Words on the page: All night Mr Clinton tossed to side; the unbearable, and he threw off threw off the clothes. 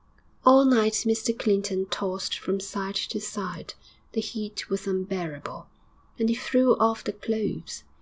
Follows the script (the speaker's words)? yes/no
no